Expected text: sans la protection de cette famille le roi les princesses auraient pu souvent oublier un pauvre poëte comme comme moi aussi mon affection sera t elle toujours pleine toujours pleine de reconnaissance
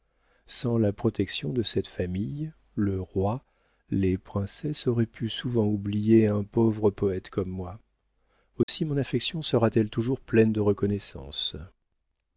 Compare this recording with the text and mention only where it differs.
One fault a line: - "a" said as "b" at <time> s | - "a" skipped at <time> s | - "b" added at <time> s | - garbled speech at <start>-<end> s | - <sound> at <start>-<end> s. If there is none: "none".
- "comme" skipped at 7.5 s
- dropout at 8.6-8.7 s
- "toujours pleine" skipped at 10.5 s